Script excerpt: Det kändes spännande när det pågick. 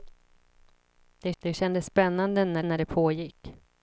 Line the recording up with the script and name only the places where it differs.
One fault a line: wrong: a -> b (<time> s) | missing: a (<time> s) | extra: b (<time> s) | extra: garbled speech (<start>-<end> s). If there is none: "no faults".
extra: det (1.4 s)
extra: när (2.6 s)